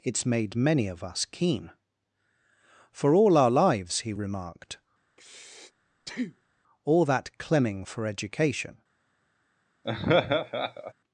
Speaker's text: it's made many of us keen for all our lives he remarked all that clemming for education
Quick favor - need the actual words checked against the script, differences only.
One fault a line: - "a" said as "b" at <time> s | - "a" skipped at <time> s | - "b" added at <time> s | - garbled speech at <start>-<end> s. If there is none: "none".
none